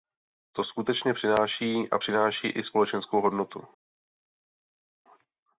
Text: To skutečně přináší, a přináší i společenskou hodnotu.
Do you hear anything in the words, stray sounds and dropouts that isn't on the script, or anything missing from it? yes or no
no